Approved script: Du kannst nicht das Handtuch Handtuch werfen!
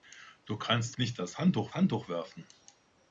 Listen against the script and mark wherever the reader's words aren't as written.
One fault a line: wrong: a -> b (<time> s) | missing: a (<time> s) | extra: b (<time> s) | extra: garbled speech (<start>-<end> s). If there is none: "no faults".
no faults